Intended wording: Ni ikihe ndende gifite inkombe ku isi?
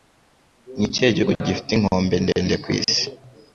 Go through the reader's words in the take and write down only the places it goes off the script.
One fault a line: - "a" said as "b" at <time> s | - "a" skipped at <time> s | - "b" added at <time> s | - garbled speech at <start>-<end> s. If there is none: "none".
- "ndende" said as "gihugu" at 1.1 s
- "ndende" added at 2.2 s